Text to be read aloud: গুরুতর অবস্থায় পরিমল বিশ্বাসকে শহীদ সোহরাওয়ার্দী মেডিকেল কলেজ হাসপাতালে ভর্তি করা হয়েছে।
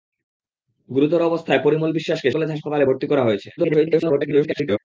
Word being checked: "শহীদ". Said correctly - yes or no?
no